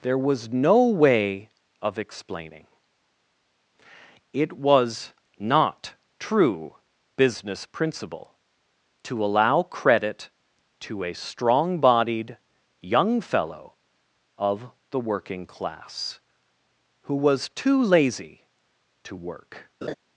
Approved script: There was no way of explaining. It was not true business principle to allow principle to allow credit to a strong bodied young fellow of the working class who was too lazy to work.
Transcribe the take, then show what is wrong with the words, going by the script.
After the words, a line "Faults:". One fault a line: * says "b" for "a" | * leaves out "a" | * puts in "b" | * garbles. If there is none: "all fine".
There was no way of explaining. It was not true business principle to allow credit to a strong bodied young fellow of the working class who was too lazy to work.
Faults:
* leaves out "principle to allow"